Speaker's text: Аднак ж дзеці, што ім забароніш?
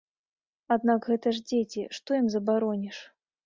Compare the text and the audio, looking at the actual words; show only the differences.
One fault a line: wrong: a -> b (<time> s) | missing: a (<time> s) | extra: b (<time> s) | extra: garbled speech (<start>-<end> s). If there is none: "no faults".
extra: гэта (1.1 s)